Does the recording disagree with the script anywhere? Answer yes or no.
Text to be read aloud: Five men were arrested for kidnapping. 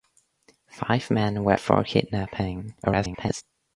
yes